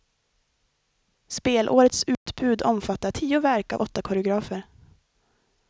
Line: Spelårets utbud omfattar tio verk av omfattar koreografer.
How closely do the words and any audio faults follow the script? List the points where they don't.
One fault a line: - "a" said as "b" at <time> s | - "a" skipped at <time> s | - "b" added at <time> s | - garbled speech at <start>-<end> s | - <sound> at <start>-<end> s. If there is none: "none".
- dropout at 2.1-2.3 s
- "omfattar" said as "åtta" at 3.8 s